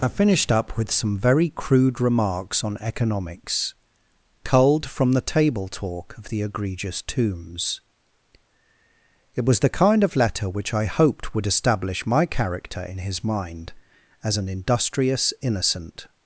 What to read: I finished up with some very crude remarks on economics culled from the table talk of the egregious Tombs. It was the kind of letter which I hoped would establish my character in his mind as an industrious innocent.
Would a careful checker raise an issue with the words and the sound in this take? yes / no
no